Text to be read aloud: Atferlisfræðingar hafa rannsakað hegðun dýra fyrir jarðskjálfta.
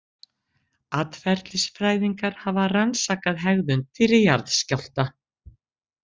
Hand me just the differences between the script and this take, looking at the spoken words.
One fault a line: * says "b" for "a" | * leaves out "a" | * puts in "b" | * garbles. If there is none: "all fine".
* leaves out "dýra"